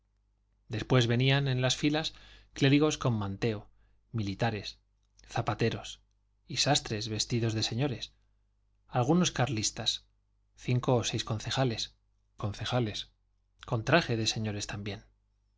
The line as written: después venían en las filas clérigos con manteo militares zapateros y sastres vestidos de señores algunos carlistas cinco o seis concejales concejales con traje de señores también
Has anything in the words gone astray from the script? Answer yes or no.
no